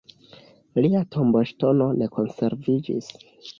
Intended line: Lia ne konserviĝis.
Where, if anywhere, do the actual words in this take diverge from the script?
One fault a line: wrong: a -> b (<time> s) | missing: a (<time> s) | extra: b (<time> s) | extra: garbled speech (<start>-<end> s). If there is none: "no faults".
extra: tomboŝtono (1.2 s)